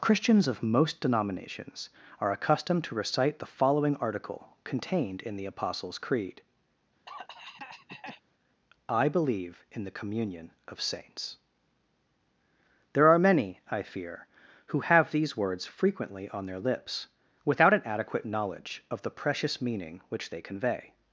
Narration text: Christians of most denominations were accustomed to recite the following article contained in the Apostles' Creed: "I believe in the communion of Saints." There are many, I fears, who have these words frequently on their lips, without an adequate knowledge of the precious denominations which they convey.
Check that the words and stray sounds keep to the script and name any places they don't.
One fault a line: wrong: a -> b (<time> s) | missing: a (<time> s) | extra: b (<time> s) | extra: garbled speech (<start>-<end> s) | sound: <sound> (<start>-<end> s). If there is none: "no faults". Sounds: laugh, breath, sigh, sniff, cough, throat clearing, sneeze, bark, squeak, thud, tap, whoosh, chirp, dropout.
wrong: were -> are (2.2 s)
sound: cough (7.1-8.2 s)
wrong: fears -> fear (13.8 s)
wrong: denominations -> meaning (19.6 s)